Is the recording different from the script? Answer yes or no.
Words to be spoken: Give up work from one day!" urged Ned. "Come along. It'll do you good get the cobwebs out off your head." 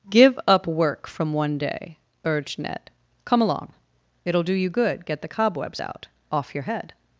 no